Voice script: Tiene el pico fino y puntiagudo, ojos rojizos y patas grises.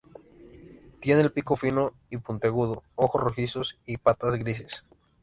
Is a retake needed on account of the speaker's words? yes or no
no